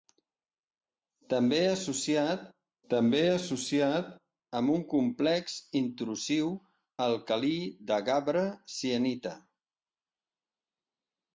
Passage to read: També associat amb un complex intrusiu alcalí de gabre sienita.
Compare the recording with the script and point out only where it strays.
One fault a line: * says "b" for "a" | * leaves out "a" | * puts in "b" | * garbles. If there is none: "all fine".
* puts in "també associat"